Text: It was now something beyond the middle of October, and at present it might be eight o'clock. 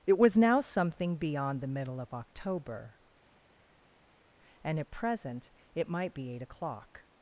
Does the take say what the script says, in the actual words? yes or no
yes